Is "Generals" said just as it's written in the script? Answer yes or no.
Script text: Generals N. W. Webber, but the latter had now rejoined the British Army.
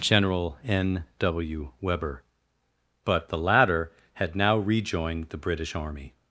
no